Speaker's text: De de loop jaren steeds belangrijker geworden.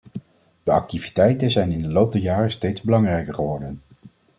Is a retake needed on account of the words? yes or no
yes